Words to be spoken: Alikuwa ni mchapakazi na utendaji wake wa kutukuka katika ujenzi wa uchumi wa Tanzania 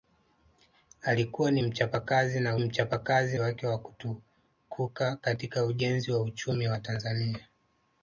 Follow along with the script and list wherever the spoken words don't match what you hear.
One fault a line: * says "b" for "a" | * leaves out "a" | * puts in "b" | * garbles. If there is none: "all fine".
* says "mchapakazi" for "utendaji"